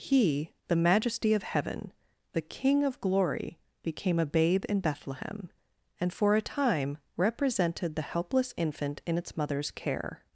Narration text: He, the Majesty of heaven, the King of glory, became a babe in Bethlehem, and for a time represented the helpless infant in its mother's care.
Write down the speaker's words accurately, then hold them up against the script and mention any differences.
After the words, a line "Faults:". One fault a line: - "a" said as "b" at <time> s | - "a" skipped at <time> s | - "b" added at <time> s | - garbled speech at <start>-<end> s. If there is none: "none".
He, the Majesty of heaven, the King of glory, became a babe in Bethlehem, and for a time represented the helpless infant in its mother's care.
Faults:
none